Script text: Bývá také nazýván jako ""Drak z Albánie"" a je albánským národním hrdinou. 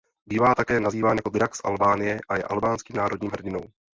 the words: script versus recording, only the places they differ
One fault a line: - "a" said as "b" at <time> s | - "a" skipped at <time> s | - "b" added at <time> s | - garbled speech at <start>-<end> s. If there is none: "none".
none